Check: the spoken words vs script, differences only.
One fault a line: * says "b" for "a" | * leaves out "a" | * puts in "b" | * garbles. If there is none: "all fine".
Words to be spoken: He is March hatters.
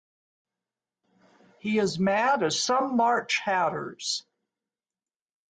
* puts in "mad as some"